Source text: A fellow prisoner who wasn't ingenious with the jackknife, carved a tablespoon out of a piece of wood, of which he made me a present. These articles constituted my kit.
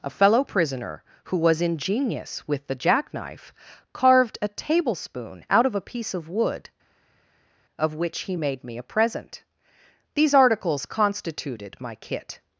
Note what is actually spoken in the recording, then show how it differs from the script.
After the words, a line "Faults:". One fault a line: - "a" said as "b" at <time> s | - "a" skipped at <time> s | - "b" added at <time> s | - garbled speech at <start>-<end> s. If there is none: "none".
A fellow prisoner who was ingenious with the jackknife, carved a tablespoon out of a piece of wood, of which he made me a present. These articles constituted my kit.
Faults:
- "wasn't" said as "was" at 1.4 s